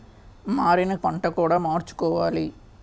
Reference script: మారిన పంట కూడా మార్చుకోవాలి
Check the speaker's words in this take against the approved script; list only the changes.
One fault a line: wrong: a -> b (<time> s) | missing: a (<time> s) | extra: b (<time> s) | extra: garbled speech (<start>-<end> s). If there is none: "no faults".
no faults